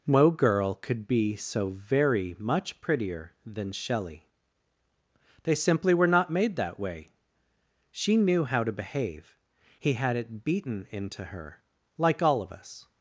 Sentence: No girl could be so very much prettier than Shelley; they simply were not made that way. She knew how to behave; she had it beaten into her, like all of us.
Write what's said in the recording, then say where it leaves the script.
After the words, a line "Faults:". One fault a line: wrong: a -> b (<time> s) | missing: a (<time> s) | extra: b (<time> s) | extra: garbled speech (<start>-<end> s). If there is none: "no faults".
No girl could be so very much prettier than Shelley; they simply were not made that way. She knew how to behave; he had it beaten into her, like all of us.
Faults:
wrong: she -> he (9.8 s)